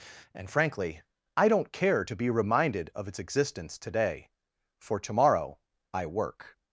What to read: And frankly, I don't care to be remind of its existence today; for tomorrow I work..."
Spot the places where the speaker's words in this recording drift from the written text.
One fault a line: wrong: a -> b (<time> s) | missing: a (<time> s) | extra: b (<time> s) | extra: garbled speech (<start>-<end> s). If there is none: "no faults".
wrong: remind -> reminded (2.3 s)